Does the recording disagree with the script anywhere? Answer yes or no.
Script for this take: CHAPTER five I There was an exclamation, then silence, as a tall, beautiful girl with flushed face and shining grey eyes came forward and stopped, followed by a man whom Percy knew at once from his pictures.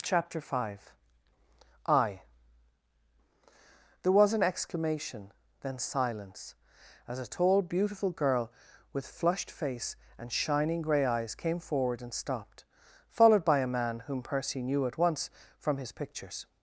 no